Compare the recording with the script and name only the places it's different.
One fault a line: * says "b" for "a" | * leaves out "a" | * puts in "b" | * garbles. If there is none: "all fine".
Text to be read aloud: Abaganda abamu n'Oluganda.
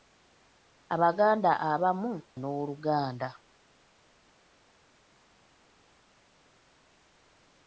all fine